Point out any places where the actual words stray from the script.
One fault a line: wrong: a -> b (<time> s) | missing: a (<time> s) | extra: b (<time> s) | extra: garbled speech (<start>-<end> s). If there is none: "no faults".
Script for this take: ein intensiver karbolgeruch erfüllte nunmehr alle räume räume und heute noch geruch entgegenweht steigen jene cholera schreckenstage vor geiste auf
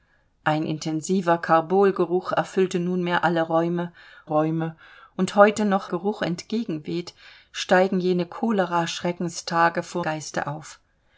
no faults